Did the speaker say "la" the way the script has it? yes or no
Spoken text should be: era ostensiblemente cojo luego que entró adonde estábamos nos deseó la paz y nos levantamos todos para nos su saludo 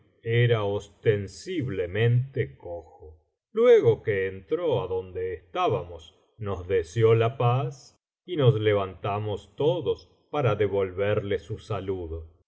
yes